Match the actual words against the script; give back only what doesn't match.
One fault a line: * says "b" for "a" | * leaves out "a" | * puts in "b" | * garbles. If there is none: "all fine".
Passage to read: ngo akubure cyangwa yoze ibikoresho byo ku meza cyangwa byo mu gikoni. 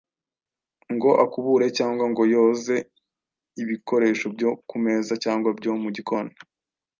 * puts in "ngo"